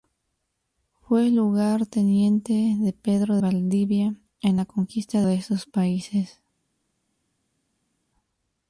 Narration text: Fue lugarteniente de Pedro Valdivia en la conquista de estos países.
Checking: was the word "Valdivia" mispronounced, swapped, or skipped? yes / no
no